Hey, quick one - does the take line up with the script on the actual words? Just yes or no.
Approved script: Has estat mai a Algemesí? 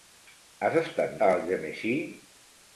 no